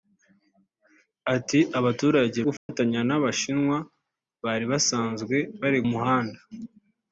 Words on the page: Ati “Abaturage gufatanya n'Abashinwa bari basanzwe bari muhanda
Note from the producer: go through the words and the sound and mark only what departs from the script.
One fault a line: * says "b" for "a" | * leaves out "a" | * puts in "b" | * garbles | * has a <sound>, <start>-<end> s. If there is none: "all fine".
* has a dropout, 2.6-2.7 s